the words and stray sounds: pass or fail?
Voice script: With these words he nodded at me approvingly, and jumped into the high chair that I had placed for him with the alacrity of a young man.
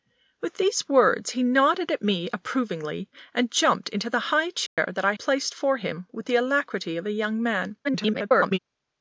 fail